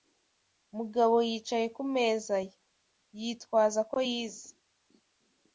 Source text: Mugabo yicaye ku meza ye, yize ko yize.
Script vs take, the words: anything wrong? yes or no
yes